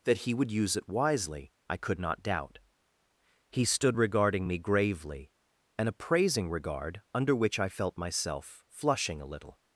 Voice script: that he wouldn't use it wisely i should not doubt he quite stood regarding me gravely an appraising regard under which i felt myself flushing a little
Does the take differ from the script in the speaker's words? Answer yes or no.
yes